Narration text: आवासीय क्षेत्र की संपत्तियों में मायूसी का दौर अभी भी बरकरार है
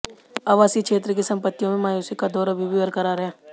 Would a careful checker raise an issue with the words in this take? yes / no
no